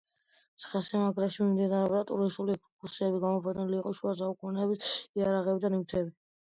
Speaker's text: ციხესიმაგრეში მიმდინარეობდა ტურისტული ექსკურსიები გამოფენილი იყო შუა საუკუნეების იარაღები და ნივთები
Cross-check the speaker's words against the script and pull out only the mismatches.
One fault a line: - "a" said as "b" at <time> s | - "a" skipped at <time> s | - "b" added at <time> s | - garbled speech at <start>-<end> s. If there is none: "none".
none